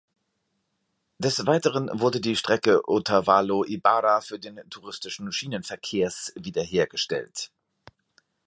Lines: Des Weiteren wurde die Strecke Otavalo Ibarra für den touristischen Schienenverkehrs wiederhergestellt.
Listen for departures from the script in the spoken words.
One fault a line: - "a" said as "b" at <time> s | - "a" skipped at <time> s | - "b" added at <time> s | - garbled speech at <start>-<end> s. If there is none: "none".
none